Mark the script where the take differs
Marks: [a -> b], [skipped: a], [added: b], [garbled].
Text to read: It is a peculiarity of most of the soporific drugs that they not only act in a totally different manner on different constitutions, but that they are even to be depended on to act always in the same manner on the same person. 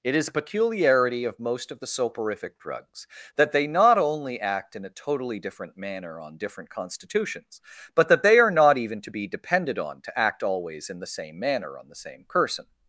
It is a peculiarity of most of the soporific drugs that they not only act in a totally different manner on different constitutions, but that they are [added: not] even to be depended on to act always in the same manner on the same person.